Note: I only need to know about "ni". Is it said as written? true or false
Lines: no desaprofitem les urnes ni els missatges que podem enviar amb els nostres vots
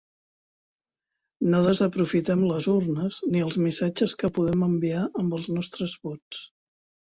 true